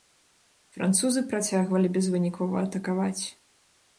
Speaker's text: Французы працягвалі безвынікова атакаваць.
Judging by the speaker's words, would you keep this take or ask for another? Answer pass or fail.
pass